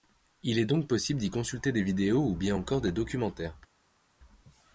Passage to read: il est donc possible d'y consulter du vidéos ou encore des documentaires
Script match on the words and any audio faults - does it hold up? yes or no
no